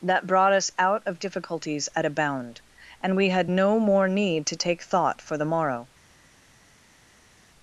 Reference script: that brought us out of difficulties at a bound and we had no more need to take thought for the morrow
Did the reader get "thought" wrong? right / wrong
right